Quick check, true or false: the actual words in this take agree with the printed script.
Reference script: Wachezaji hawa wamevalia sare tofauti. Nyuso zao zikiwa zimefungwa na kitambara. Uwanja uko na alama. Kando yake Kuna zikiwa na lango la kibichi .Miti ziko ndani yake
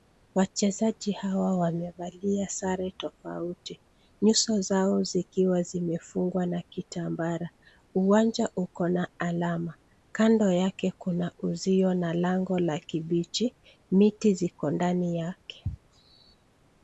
false